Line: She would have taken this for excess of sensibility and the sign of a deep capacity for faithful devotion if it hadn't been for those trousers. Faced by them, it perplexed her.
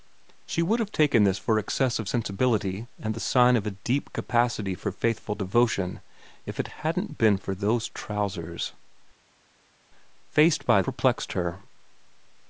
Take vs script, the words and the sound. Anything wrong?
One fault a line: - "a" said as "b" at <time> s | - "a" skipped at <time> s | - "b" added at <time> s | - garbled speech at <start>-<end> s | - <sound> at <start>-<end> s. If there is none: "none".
- "them it" skipped at 10.8 s